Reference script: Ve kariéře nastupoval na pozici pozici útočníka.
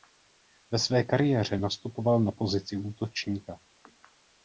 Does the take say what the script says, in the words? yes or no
no